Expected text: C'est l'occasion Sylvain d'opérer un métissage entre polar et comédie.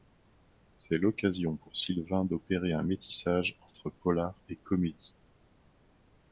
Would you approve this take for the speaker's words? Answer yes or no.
no